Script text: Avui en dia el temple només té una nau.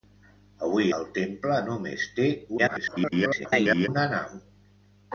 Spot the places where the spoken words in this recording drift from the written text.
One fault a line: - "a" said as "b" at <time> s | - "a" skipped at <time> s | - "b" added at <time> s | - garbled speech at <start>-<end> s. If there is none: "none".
- "en dia" skipped at 0.9 s
- garbled speech at 2.6-3.9 s